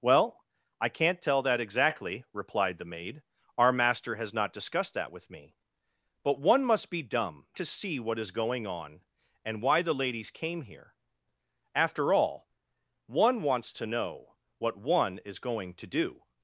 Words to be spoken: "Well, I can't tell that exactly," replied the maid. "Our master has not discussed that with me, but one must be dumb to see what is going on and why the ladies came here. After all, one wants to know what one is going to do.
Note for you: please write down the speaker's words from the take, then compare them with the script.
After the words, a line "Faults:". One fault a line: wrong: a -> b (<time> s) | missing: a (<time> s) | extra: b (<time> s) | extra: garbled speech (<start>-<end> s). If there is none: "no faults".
"Well, I can't tell that exactly," replied the maid. "Our master has not discussed that with me, but one must be dumb to see what is going on and why the ladies came here. After all, one wants to know what one is going to do.
Faults:
no faults